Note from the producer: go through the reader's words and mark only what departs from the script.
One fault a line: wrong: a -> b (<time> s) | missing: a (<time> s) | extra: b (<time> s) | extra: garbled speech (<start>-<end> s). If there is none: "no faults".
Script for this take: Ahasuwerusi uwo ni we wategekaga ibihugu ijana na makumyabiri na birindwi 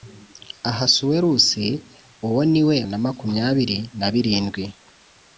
missing: wategekaga ibihugu ijana (2.8 s)